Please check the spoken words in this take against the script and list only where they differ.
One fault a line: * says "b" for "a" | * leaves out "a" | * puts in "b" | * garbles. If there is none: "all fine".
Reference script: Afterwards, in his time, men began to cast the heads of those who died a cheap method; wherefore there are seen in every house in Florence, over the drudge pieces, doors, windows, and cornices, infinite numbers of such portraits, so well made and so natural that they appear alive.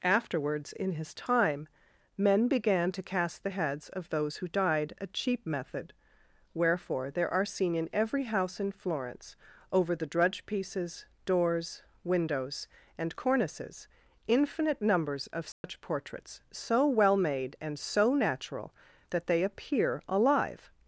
all fine